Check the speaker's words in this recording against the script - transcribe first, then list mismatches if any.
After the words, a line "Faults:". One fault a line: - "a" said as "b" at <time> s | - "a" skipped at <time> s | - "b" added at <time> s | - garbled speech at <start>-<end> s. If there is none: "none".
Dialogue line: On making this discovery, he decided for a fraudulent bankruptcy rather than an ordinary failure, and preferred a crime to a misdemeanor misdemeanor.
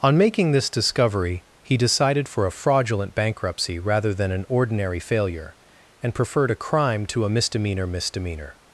On making this discovery, he decided for a fraudulent bankruptcy rather than an ordinary failure, and preferred a crime to a misdemeanor misdemeanor.
Faults:
none